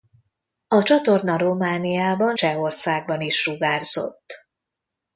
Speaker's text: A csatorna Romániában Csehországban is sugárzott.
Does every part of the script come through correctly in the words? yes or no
yes